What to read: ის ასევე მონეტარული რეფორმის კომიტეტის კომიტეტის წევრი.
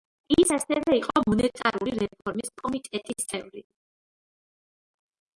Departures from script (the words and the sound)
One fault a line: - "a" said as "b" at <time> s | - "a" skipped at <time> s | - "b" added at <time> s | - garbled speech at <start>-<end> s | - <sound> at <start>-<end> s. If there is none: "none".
- "იყო" added at 1.0 s
- "კომიტეტის" skipped at 3.3 s